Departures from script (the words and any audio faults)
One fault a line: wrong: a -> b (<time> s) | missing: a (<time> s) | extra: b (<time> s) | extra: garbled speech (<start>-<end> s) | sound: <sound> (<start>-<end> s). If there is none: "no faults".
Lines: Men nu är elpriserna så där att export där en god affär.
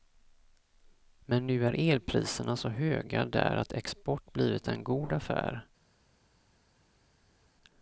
extra: höga (2.7 s)
wrong: där -> blivit (4.3 s)